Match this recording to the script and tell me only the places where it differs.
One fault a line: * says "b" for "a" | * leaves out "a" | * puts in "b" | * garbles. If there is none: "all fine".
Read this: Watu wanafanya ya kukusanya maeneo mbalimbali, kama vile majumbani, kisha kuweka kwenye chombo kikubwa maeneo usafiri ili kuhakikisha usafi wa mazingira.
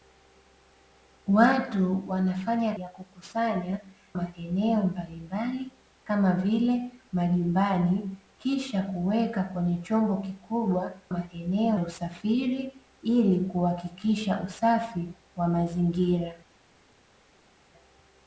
all fine